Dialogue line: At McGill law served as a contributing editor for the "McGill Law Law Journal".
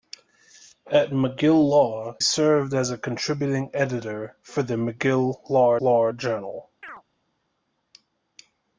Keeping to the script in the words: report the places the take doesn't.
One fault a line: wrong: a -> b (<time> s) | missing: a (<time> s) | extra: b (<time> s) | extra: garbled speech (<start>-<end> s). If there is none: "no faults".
no faults